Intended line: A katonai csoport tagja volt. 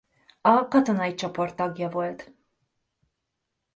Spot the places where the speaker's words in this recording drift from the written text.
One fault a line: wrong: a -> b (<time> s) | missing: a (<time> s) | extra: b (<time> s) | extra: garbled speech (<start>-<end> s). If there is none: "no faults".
no faults